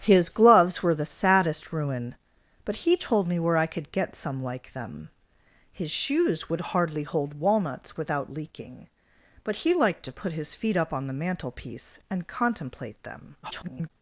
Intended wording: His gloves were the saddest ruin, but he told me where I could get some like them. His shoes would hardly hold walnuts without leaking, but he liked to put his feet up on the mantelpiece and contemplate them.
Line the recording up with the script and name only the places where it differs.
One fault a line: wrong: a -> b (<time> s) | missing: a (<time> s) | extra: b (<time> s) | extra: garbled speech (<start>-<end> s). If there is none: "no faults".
extra: garbled speech (13.4-13.9 s)